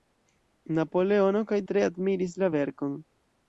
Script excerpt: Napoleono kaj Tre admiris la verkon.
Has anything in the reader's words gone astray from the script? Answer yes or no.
no